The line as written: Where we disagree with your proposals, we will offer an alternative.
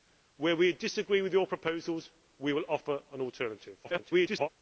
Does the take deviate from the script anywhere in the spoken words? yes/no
yes